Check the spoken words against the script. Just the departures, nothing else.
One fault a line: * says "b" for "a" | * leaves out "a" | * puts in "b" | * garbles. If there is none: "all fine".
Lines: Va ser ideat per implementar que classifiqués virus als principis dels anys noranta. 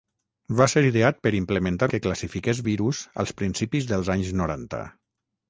all fine